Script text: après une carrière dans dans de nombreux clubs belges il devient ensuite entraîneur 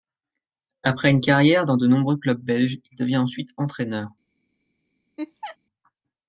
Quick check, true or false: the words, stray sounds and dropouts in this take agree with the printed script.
false